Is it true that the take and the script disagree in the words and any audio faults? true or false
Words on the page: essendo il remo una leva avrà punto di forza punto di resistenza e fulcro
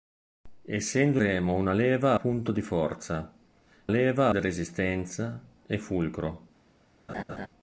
true